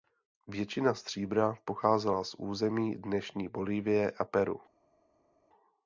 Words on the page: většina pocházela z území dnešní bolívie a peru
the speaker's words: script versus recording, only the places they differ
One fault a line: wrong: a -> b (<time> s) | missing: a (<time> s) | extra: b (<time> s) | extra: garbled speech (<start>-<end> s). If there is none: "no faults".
extra: stříbra (0.9 s)